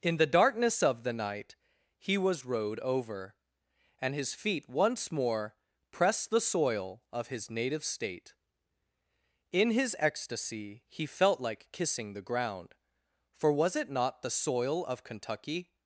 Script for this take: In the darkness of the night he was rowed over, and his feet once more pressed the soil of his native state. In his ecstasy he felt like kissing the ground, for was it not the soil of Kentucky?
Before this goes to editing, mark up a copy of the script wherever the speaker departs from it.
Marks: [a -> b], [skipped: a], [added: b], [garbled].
In the darkness of the night he was rowed over, and his feet once more pressed the soil of his native state. In his ecstasy he felt like kissing the ground, for was it not the soil of Kentucky?